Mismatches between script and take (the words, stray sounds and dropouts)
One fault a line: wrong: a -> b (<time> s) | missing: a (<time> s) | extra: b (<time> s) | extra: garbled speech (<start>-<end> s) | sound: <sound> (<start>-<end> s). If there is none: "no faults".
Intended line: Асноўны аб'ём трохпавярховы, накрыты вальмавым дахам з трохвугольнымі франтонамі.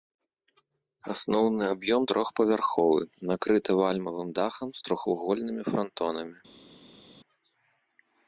no faults